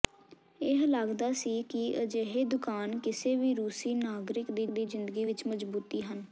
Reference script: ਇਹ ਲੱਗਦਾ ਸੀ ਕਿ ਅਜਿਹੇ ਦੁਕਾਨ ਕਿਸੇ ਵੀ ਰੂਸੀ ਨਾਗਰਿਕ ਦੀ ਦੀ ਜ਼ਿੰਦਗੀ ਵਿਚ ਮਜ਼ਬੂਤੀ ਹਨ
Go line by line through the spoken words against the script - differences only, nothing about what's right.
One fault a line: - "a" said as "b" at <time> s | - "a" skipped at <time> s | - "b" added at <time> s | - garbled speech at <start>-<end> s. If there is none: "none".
none